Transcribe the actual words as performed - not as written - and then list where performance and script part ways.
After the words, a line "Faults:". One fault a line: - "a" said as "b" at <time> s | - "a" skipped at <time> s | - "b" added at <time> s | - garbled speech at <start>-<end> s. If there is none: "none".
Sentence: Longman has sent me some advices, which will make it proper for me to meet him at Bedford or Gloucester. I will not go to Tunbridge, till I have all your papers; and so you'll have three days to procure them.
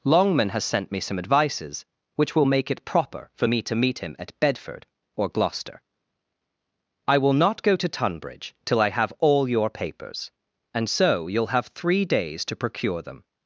Longman has sent me some advices, which will make it proper for me to meet him at Bedford or Gloucester. I will not go to Tunbridge, till I have all your papers; and so you'll have three days to procure them.
Faults:
none